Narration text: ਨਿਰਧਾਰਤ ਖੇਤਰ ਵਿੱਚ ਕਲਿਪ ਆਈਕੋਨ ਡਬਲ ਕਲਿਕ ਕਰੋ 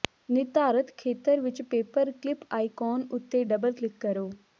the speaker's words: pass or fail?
fail